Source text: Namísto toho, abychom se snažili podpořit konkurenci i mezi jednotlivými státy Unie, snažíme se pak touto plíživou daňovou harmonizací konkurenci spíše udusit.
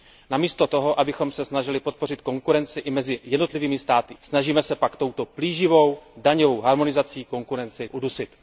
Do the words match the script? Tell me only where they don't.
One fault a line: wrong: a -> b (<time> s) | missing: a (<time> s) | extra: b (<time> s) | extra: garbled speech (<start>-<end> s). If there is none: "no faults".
missing: Unie (4.1 s)
missing: spíše (7.9 s)